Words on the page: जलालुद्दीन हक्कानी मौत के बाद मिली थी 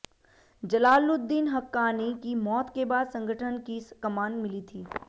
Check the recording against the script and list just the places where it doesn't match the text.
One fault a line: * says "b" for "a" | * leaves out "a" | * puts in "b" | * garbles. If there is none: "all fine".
* puts in "की"
* puts in "संगठन की कमान"